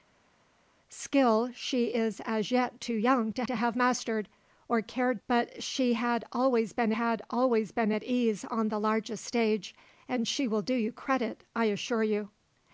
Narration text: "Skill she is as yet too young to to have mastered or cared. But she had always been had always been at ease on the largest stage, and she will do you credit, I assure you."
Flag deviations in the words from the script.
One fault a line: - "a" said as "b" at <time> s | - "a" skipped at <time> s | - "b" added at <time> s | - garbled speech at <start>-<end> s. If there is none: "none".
none